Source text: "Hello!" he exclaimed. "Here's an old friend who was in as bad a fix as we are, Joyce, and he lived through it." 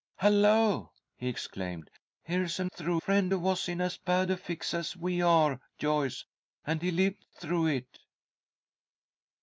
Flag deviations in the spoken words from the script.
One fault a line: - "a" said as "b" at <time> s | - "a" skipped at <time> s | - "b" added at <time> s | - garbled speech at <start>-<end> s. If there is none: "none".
- "old" said as "through" at 2.7 s